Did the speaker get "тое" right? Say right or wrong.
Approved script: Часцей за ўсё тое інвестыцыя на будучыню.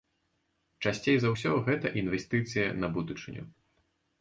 wrong